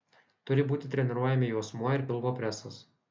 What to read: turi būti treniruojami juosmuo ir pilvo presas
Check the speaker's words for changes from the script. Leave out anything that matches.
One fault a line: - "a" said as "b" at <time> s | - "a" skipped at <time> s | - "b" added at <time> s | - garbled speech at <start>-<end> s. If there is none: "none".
none